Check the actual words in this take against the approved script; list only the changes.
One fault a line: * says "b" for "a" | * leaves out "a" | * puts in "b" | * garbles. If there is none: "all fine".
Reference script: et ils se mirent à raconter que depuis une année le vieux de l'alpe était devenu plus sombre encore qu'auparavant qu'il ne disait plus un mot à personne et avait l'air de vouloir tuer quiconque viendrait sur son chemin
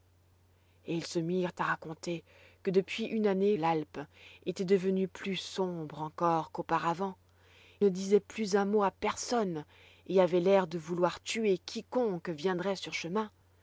* leaves out "le vieux de"
* leaves out "qu'il"
* leaves out "son"